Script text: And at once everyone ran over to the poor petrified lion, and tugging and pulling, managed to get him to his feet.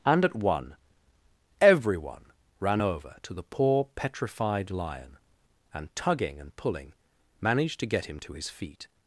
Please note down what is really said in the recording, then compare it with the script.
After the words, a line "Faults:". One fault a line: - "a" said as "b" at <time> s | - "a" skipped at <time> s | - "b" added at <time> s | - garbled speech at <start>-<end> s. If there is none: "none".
And at one everyone ran over to the poor petrified lion, and tugging and pulling, managed to get him to his feet.
Faults:
- "once" said as "one" at 0.3 s